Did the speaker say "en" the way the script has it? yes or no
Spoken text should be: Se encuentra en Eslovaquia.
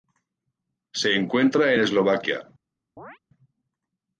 no